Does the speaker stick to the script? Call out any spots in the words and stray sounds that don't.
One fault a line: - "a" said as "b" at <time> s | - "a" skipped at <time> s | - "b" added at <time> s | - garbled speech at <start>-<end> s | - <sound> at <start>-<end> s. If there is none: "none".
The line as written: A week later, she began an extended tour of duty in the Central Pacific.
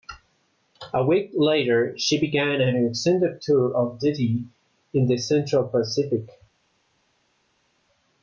none